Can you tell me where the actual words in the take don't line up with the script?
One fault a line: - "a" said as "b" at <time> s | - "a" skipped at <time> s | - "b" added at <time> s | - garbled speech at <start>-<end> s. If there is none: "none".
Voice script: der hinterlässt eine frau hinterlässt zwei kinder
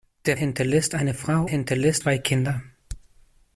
none